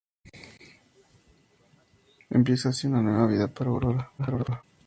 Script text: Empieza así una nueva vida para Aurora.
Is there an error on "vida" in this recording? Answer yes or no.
no